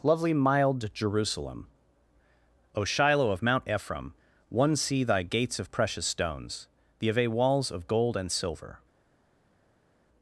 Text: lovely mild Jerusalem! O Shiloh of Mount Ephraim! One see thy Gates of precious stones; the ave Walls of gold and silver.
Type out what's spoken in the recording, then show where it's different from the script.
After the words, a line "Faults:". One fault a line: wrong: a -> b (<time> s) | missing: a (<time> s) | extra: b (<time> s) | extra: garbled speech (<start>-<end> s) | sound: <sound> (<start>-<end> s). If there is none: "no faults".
lovely mild Jerusalem! O Shiloh of Mount Ephraim! One see thy Gates of precious stones; the ave Walls of gold and silver.
Faults:
no faults